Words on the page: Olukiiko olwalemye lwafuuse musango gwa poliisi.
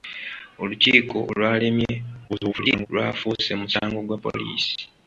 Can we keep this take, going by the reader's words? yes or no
no